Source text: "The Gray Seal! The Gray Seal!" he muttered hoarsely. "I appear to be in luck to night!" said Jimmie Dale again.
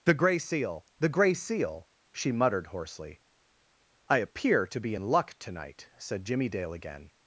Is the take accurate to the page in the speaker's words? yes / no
no